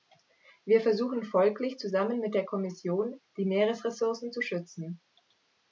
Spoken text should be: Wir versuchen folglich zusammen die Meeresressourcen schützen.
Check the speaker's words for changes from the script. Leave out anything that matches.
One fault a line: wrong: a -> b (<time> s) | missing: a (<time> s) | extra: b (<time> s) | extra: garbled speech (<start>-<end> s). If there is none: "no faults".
extra: mit der Kommission (2.2 s)
extra: zu (4.3 s)